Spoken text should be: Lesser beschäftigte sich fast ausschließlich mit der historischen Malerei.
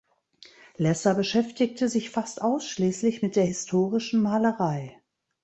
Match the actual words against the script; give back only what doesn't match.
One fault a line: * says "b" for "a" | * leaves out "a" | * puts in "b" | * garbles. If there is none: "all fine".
all fine